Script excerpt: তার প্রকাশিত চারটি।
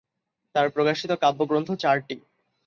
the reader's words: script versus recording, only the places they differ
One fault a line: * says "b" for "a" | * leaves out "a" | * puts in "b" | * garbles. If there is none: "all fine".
* puts in "কাব্যগ্রন্থ"